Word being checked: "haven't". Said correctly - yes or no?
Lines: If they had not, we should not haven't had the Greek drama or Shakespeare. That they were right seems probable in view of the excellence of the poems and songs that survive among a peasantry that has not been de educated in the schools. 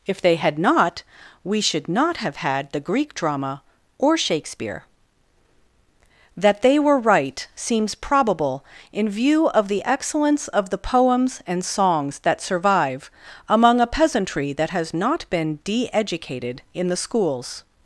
no